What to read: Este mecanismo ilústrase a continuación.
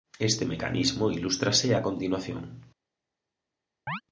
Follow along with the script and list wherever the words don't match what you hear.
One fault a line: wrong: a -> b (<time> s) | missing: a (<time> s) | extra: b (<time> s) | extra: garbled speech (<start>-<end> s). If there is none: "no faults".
no faults